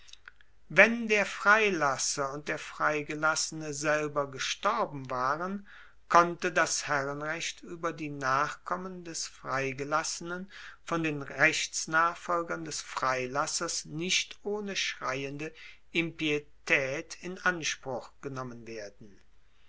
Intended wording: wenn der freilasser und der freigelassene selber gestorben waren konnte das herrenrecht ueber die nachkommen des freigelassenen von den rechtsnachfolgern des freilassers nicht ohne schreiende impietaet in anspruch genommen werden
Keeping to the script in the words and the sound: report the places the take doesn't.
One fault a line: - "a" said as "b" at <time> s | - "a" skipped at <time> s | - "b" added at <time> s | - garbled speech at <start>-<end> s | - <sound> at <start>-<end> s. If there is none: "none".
none